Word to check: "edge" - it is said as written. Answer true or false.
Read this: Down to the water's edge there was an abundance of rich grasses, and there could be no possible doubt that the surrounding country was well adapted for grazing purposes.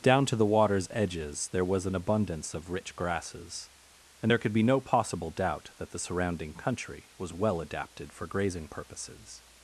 false